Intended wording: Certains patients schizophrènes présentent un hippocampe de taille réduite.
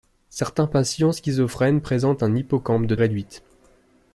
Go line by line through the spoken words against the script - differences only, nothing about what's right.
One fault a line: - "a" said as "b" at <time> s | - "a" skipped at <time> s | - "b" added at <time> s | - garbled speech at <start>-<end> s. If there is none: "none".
- "taille" skipped at 3.0 s